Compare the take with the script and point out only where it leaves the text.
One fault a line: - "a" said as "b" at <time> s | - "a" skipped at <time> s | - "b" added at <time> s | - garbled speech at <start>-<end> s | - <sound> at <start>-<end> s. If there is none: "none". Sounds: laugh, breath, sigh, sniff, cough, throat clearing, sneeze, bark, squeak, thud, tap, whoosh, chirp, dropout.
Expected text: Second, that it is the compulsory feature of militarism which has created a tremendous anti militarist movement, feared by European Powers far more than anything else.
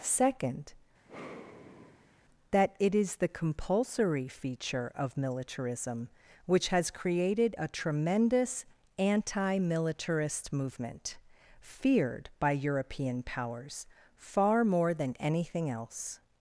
- sigh at 1.0-2.2 s